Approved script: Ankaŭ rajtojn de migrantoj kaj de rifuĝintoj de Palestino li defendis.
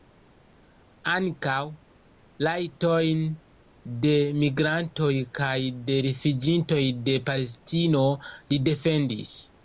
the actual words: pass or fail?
pass